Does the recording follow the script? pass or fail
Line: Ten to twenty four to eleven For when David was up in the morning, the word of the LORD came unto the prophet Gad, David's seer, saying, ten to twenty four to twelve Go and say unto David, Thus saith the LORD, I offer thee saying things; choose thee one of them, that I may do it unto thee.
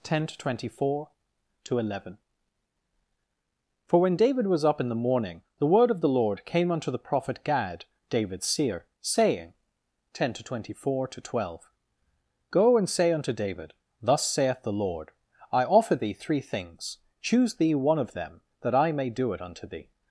fail